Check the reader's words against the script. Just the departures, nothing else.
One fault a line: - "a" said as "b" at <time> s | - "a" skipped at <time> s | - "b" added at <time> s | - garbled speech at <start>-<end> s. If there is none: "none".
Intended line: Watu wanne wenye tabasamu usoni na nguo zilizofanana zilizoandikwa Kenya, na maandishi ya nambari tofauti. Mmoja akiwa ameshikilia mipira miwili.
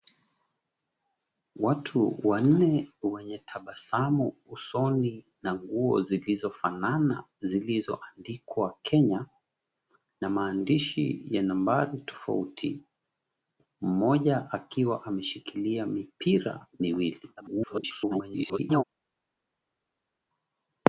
- garbled speech at 17.4-18.8 s